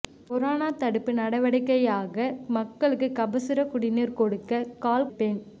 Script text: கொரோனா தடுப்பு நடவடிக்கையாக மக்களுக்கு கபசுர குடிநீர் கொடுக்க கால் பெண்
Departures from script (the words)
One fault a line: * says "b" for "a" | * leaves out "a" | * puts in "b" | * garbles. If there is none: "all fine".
all fine